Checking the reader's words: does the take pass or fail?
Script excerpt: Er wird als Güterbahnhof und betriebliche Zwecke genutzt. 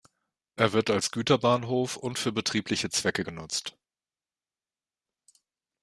fail